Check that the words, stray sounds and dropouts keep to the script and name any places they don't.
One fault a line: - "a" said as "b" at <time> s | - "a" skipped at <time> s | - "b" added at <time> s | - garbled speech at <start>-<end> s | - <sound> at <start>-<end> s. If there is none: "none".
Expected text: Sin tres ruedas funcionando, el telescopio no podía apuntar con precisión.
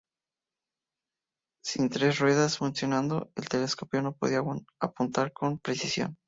none